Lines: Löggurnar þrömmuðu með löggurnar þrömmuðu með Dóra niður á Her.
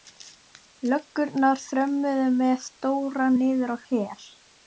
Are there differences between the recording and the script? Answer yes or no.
yes